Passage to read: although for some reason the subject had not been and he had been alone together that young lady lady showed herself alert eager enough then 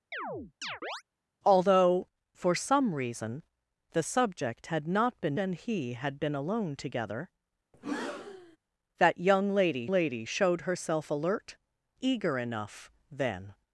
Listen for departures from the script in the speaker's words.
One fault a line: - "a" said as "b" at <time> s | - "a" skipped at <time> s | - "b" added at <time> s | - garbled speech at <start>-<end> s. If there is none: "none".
none